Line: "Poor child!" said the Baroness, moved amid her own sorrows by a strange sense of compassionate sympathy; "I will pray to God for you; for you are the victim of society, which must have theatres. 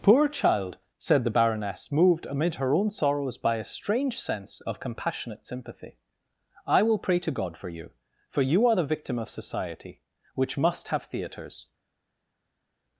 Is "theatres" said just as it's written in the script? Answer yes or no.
yes